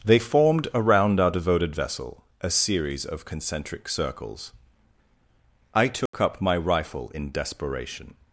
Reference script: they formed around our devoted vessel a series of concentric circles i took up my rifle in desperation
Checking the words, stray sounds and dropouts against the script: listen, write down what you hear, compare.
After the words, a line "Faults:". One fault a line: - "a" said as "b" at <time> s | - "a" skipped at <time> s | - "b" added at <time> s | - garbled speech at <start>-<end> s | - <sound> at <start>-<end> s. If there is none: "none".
they formed around our devoted vessel a series of concentric circles i took up my rifle in desperation
Faults:
- dropout at 6.1-6.1 s